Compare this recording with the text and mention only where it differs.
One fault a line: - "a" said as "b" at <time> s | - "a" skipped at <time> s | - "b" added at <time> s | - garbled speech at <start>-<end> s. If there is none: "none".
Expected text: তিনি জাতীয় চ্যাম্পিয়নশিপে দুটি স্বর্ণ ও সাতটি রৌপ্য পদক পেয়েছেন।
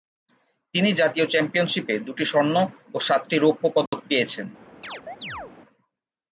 none